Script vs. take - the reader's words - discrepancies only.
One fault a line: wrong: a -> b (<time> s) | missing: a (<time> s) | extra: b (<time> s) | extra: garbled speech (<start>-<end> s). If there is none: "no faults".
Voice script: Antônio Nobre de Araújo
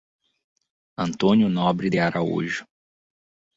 no faults